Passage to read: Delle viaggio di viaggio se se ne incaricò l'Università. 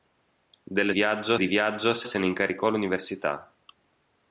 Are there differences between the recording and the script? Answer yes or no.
no